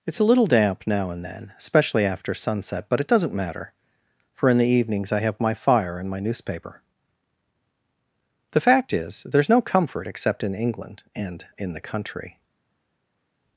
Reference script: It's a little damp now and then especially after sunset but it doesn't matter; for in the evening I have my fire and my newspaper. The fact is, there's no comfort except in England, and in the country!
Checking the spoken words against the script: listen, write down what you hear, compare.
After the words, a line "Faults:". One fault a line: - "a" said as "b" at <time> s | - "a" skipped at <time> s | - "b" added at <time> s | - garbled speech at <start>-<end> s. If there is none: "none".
It's a little damp now and then especially after sunset but it doesn't matter; for in the evenings I have my fire and my newspaper. The fact is, there's no comfort except in England, and in the country!
Faults:
- "evening" said as "evenings" at 4.7 s